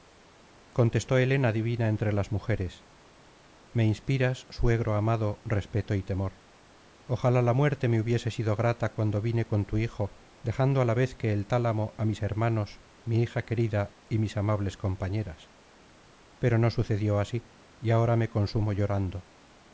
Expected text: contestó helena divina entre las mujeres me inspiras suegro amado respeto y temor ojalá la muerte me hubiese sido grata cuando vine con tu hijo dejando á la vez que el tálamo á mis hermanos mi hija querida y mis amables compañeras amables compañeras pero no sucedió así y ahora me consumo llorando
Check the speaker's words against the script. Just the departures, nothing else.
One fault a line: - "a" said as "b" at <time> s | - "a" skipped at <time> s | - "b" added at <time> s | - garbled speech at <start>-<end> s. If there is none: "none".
- "amables compañeras" skipped at 15.5 s